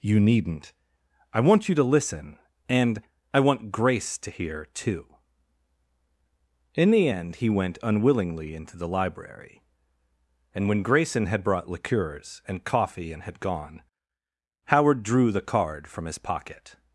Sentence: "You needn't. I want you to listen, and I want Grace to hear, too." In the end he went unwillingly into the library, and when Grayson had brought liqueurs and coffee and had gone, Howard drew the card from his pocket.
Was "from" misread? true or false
false